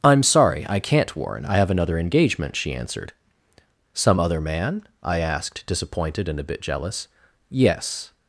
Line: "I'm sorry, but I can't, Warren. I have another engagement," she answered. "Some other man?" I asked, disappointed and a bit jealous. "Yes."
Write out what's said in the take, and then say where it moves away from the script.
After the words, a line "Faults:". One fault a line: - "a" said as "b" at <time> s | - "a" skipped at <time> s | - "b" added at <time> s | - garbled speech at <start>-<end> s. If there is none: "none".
"I'm sorry, I can't, Warren. I have another engagement," she answered. "Some other man?" I asked, disappointed and a bit jealous. "Yes."
Faults:
- "but" skipped at 0.7 s